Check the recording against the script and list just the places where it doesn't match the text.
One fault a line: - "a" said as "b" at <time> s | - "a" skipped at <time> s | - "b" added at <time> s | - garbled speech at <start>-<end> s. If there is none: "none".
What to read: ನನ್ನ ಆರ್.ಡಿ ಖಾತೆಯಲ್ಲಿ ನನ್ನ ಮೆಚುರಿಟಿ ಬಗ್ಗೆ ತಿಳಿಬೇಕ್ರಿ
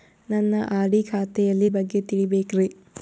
- "ನನ್ನ ಮೆಚುರಿಟಿ" skipped at 1.7 s